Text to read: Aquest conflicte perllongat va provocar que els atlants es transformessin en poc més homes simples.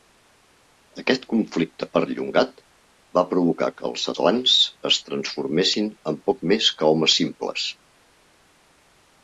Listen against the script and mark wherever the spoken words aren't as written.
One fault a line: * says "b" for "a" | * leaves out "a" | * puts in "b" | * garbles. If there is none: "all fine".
* puts in "que"